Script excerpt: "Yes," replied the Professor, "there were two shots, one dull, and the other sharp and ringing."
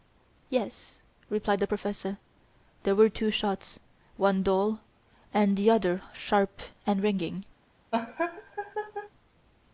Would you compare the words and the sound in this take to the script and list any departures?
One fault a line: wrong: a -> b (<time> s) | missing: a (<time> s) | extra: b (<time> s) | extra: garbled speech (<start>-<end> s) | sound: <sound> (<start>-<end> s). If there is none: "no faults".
sound: laugh (7.9-9.1 s)